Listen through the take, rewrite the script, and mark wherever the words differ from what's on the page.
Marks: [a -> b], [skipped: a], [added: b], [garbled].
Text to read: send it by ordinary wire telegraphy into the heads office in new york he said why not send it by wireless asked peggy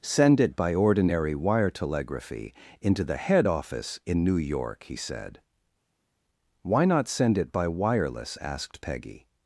send it by ordinary wire telegraphy into the [heads -> head] office in new york he said why not send it by wireless asked peggy